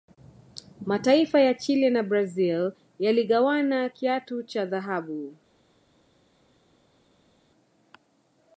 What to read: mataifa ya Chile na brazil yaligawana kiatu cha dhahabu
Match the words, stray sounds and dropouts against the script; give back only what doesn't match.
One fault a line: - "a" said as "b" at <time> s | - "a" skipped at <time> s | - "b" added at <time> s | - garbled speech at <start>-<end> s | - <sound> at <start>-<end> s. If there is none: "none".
none